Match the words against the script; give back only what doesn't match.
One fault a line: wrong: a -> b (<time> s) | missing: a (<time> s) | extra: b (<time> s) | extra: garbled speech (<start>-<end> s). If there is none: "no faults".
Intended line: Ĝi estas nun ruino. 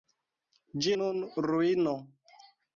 missing: estas (0.9 s)